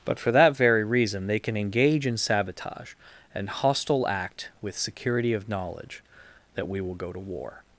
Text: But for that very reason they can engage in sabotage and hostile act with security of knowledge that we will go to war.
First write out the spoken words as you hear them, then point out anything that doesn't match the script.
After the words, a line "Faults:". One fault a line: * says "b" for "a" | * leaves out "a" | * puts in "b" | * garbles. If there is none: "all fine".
But for that very reason they can engage in sabotage and hostile act with security of knowledge that we will go to war.
Faults:
all fine